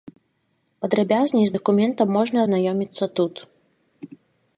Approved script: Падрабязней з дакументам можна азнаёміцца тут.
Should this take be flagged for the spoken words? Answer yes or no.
no